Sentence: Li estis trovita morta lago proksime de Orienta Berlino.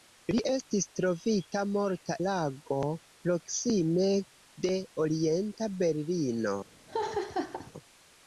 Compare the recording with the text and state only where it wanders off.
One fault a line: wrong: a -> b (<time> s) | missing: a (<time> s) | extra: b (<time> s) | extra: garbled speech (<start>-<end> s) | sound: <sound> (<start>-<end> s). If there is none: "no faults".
sound: laugh (6.9-7.7 s)